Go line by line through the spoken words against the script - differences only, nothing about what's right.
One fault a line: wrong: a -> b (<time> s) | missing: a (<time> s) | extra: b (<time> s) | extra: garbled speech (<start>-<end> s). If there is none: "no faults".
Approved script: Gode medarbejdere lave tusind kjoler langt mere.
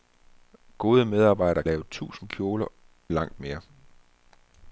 no faults